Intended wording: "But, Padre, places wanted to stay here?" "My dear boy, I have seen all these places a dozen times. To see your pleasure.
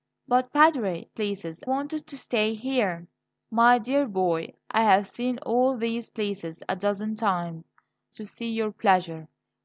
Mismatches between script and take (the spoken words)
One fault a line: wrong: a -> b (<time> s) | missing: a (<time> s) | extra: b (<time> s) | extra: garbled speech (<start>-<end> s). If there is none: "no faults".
no faults